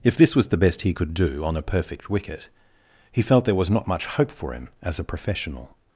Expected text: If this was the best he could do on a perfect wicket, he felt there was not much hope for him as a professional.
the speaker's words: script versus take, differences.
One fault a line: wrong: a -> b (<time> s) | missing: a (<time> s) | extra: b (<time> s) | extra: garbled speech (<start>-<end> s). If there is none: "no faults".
no faults